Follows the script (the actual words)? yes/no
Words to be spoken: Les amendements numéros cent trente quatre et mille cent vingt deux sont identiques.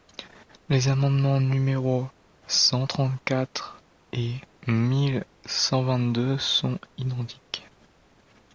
yes